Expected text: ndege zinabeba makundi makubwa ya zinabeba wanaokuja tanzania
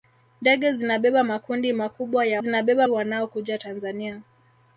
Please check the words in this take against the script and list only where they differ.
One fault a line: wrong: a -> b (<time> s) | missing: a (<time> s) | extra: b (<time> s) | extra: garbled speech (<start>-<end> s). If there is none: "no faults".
no faults